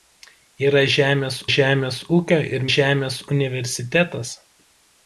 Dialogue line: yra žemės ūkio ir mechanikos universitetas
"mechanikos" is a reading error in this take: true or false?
true